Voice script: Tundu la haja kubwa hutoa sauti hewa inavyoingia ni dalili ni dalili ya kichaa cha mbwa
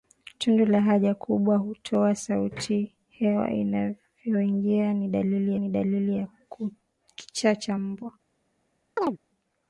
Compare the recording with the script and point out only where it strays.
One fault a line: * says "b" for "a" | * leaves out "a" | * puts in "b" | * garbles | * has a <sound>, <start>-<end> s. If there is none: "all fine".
* has a chirp, 9.0-9.2 s